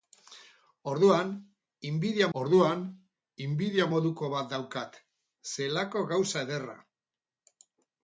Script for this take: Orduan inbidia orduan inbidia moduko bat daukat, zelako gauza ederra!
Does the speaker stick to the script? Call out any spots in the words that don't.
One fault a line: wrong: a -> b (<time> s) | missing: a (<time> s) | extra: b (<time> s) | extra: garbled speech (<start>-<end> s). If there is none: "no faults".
no faults